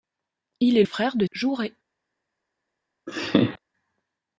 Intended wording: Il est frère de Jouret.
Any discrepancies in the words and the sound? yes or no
yes